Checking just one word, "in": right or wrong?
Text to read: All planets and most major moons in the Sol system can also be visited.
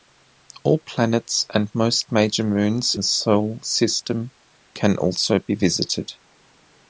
wrong